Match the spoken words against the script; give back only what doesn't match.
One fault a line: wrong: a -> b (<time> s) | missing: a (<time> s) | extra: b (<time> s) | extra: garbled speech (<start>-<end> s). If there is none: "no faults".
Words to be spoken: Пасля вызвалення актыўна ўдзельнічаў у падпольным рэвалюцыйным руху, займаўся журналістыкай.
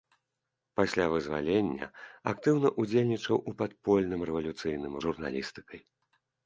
missing: руху займаўся (5.0 s)